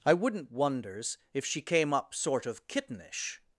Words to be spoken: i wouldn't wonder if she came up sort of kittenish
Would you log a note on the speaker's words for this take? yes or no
yes